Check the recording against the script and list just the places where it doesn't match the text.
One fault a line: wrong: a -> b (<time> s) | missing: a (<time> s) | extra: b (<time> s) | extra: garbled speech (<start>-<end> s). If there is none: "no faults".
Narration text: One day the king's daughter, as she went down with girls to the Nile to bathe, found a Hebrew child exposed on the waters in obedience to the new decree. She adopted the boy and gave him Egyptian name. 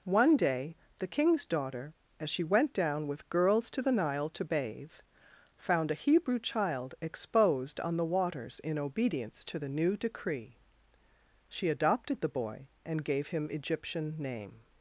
no faults